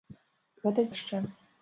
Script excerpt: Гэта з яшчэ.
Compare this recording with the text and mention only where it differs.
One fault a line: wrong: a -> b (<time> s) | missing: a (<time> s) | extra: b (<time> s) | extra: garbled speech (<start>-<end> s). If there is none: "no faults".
no faults